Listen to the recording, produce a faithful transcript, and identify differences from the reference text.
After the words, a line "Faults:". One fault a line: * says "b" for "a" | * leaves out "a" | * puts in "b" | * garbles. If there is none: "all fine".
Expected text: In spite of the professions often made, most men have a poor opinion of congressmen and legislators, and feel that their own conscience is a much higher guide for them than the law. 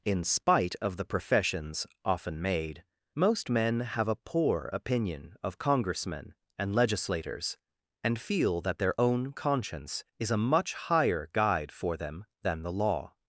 In spite of the professions often made, most men have a poor opinion of congressmen and legislators, and feel that their own conscience is a much higher guide for them than the law.
Faults:
all fine